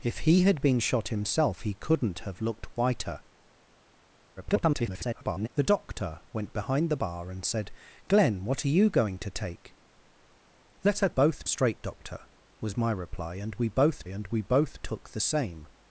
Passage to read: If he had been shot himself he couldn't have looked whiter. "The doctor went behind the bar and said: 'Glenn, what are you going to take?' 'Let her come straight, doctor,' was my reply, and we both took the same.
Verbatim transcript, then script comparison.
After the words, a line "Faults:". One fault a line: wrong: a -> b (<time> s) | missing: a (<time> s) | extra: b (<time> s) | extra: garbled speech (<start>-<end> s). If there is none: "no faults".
If he had been shot himself he couldn't have looked whiter. [garbled] "The doctor went behind the bar and said: 'Glenn, what are you going to take?' 'Let her both straight, doctor,' was my reply, and we both and we both took the same.
Faults:
extra: garbled speech (4.4-5.5 s)
wrong: come -> both (11.1 s)
extra: and we both (14.1 s)